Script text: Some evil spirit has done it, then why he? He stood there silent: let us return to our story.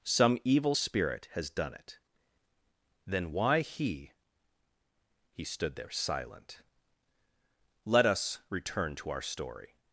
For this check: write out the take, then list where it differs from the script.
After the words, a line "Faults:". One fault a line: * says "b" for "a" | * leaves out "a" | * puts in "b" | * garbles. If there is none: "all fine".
Some evil spirit has done it, then why he? He stood there silent: let us return to our story.
Faults:
all fine